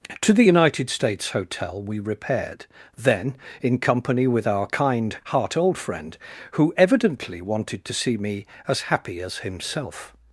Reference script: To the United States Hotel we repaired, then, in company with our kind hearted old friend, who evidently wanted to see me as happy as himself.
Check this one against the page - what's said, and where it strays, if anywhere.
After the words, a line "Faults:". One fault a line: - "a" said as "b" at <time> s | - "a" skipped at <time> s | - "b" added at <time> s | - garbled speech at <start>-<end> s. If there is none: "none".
To the United States Hotel we repaired, then, in company with our kind heart old friend, who evidently wanted to see me as happy as himself.
Faults:
- "hearted" said as "heart" at 5.3 s